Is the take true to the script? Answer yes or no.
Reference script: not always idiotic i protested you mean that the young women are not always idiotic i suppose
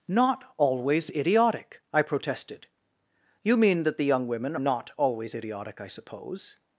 no